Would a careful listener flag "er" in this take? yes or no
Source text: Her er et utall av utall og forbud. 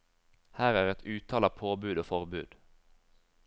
no